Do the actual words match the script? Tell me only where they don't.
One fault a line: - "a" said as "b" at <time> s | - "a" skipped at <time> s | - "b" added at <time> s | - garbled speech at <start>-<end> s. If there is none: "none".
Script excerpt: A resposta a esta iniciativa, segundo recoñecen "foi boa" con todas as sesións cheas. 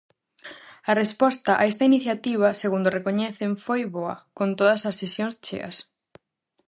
none